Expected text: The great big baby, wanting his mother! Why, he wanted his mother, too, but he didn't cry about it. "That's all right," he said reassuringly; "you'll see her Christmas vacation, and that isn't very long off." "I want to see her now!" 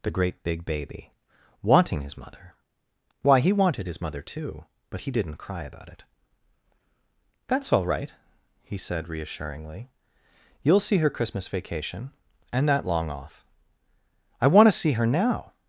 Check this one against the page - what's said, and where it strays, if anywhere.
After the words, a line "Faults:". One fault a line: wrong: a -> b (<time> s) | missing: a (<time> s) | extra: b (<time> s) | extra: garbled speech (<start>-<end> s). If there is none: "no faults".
The great big baby, wanting his mother! Why, he wanted his mother, too, but he didn't cry about it. "That's all right," he said reassuringly; "you'll see her Christmas vacation, and that long off." "I want to see her now!"
Faults:
missing: isn't very (12.9 s)